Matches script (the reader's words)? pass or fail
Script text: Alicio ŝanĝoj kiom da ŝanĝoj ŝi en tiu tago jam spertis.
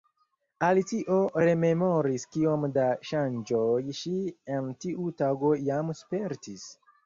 fail